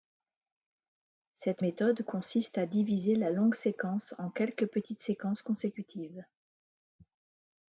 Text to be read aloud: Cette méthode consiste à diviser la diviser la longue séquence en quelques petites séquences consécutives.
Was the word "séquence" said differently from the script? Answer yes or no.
no